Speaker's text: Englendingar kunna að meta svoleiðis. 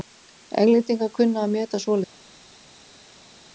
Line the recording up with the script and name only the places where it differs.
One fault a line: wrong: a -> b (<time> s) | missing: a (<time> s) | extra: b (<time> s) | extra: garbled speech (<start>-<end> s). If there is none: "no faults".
no faults